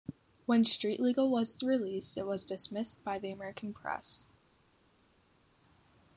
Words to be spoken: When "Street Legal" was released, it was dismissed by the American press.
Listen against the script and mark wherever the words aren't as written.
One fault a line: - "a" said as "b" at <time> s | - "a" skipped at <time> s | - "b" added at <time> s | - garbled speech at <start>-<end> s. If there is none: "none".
none